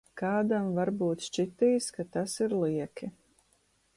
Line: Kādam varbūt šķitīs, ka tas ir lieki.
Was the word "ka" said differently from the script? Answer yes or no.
no